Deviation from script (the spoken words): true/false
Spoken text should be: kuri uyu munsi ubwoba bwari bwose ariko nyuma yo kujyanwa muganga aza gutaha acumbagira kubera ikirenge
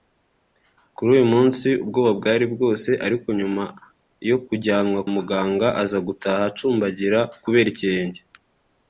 false